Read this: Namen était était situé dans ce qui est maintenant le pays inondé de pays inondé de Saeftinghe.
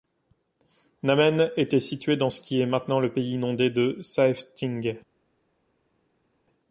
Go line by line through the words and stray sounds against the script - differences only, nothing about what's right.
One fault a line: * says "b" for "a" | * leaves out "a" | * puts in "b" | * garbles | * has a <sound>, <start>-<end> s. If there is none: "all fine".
* leaves out "était"
* leaves out "pays inondé de"